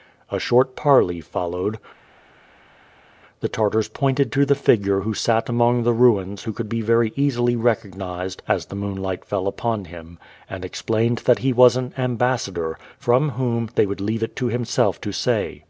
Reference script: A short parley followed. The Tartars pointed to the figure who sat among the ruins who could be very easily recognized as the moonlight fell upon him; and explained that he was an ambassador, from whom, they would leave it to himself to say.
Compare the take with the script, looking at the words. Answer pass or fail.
pass